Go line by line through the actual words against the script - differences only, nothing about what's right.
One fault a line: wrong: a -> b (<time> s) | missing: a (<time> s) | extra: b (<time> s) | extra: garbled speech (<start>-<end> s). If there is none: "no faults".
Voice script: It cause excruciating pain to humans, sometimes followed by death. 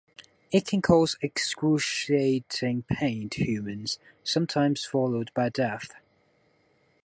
extra: can (0.7 s)